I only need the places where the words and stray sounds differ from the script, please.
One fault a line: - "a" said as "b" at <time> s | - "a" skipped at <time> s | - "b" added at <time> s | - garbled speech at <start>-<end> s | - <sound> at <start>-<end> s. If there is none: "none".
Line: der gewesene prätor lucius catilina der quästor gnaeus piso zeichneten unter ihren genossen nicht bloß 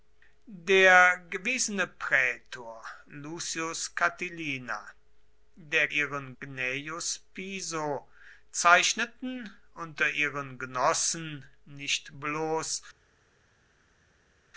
- "quästor" said as "ihren" at 5.9 s